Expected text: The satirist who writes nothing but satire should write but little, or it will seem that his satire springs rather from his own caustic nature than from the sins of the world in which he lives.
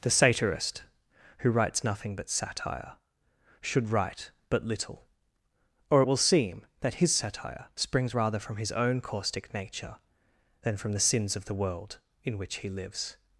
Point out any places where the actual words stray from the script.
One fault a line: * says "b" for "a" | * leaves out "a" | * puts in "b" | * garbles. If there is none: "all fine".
all fine